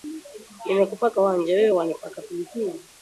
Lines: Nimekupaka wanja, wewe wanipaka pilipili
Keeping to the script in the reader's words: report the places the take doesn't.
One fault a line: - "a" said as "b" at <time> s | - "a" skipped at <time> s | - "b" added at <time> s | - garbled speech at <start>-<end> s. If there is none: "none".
none